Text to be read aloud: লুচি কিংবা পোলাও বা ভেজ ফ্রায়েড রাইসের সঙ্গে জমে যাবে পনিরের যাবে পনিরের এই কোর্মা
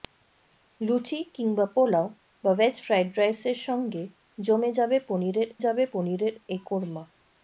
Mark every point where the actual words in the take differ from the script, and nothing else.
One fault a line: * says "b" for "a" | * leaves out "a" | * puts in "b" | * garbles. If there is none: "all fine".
all fine